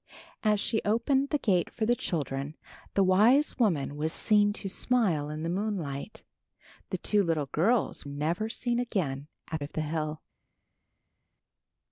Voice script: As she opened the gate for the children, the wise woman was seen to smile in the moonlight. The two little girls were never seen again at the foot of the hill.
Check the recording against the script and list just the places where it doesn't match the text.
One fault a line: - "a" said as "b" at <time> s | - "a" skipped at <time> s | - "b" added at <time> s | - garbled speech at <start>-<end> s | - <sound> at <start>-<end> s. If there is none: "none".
- "were" skipped at 8.1 s
- "the foot" skipped at 9.6 s